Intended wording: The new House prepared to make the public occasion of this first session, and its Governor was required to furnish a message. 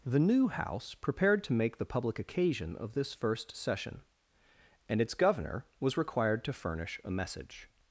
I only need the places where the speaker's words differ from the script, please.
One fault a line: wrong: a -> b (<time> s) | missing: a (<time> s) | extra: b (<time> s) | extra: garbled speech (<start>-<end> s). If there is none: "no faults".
no faults